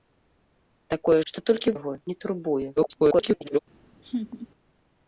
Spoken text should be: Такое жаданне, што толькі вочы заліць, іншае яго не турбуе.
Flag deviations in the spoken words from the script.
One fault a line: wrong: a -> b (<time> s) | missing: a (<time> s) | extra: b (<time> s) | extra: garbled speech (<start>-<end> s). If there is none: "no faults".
missing: жаданне (1.2 s)
missing: вочы заліць іншае (1.8 s)
extra: garbled speech (2.8-3.6 s)